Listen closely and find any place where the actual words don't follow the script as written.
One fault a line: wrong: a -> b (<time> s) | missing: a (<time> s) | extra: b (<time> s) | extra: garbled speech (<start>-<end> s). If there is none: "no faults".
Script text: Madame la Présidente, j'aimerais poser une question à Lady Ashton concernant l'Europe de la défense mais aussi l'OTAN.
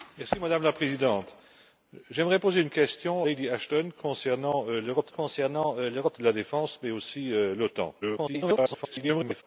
missing: à (3.3 s)
extra: concernant l'Europe (5.1 s)
extra: garbled speech (8.0-9.4 s)